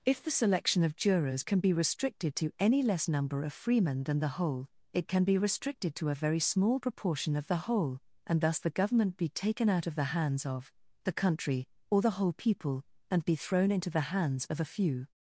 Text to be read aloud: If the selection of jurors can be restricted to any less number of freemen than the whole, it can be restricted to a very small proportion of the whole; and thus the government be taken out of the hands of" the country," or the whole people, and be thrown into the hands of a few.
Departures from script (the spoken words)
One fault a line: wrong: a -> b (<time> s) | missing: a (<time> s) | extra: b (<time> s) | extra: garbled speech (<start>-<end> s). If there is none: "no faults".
no faults